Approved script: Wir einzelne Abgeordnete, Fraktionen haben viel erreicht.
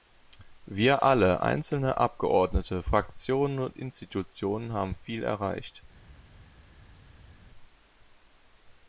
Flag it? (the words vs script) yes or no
yes